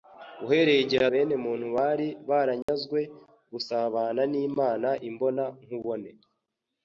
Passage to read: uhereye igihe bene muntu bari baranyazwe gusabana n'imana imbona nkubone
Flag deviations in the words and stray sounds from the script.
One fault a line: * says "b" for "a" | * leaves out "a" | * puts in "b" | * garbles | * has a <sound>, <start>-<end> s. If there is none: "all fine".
* has a dropout, 2.6-2.7 s